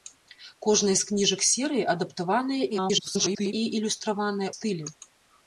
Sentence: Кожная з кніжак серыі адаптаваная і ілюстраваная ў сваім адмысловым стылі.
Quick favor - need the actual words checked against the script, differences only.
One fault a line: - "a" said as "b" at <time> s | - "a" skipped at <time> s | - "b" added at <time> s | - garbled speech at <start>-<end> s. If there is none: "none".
- garbled speech at 2.7-3.5 s
- "ў сваім адмысловым" skipped at 4.5 s